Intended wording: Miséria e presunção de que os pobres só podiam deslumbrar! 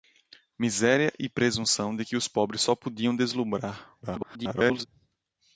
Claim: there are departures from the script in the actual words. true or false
true